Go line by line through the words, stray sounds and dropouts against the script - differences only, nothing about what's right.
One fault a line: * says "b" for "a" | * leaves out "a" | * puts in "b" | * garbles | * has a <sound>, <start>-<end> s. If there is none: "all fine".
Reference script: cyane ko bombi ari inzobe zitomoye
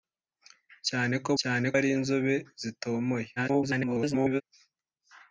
* says "cyane" for "bombi"
* garbles